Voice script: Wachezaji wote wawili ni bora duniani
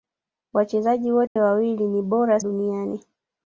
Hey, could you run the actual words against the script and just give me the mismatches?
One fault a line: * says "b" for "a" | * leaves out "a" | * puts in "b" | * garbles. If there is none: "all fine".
all fine